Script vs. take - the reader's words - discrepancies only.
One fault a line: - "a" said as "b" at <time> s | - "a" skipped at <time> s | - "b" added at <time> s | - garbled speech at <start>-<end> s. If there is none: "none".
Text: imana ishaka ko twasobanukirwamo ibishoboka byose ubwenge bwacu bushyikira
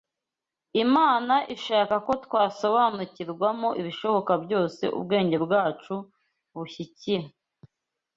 none